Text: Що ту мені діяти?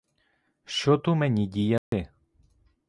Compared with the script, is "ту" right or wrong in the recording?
right